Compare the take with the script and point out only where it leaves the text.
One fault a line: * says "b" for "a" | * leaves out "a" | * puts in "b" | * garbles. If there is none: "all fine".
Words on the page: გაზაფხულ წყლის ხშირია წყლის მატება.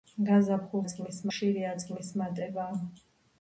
all fine